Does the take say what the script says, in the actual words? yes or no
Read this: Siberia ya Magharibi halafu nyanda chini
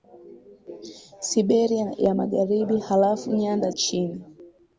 yes